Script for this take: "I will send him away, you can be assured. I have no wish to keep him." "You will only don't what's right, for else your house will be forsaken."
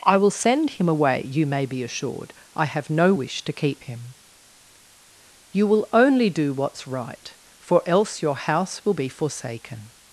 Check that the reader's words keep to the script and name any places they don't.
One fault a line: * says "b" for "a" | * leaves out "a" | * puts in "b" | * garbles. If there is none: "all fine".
* says "may" for "can"
* says "do" for "don't"